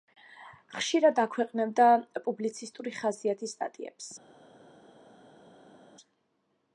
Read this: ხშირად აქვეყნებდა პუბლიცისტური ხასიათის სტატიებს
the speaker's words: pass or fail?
pass